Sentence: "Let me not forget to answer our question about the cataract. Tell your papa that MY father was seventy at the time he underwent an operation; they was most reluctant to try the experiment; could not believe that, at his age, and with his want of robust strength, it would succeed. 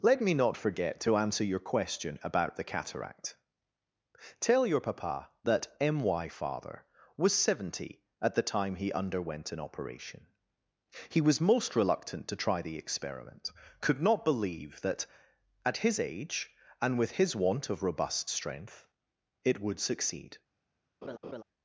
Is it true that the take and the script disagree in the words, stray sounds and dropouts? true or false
true